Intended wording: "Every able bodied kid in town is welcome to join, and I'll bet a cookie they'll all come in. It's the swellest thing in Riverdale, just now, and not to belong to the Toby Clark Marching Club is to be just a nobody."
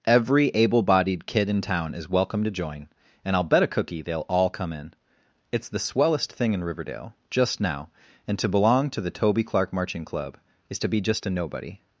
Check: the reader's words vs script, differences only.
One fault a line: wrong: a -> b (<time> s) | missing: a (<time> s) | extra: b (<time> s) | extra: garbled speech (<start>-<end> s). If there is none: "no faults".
missing: not (8.4 s)